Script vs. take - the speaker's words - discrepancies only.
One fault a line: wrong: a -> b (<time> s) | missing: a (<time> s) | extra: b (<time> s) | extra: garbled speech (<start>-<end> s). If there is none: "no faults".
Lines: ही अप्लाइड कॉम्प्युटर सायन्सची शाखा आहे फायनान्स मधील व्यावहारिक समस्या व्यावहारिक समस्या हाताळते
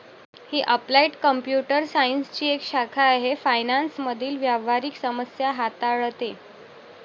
extra: एक (2.5 s)
missing: व्यावहारिक समस्या (5.5 s)